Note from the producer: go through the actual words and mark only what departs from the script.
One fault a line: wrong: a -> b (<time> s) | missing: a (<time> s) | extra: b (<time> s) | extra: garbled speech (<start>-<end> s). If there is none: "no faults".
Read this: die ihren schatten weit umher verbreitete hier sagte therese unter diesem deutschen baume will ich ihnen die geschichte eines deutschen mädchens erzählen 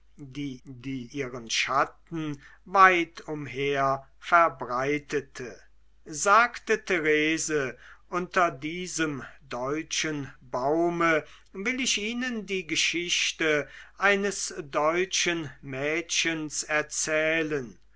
extra: die (0.6 s)
missing: hier (5.6 s)